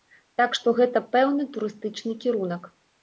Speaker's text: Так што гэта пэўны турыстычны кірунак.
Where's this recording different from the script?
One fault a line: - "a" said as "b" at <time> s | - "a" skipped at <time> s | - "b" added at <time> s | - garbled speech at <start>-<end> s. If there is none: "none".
none